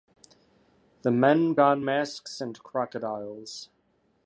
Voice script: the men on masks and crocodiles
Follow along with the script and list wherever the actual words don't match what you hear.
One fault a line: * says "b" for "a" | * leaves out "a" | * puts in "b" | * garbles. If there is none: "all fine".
all fine